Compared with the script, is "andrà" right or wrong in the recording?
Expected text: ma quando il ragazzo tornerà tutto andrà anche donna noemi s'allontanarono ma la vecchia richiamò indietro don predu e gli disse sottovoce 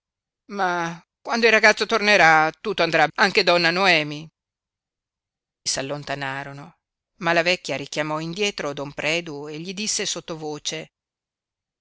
right